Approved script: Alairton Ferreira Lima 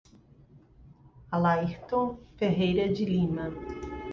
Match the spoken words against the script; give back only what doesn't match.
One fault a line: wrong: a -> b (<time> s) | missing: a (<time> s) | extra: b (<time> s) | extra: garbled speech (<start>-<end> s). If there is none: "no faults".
extra: de (2.9 s)